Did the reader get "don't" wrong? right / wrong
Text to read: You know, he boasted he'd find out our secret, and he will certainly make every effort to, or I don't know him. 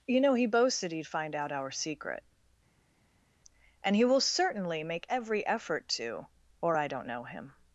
right